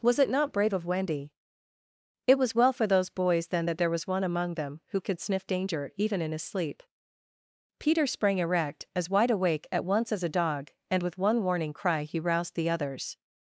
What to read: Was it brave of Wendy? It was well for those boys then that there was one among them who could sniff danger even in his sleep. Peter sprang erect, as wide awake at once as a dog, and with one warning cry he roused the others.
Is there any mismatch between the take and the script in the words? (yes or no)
yes